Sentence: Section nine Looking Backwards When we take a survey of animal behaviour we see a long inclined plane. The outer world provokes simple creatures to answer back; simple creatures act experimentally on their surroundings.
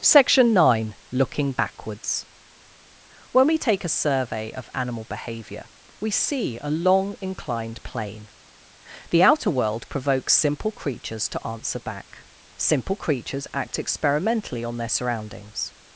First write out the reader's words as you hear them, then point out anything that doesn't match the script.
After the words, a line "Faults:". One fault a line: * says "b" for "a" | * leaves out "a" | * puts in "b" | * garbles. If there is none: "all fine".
Section nine Looking Backwards When we take a survey of animal behaviour we see a long inclined plane. The outer world provokes simple creatures to answer back; simple creatures act experimentally on their surroundings.
Faults:
all fine